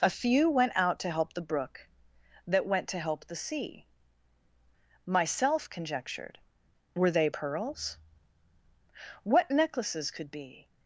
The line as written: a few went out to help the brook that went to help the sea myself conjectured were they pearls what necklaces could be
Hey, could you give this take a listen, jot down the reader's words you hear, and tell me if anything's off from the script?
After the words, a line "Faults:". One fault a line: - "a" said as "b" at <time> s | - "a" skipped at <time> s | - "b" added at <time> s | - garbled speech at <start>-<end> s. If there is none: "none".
a few went out to help the brook that went to help the sea myself conjectured were they pearls what necklaces could be
Faults:
none